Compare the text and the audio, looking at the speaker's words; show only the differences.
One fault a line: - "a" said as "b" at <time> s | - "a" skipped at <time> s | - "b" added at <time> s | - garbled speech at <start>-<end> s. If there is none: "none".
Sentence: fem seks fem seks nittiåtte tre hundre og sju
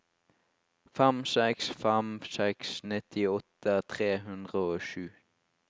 none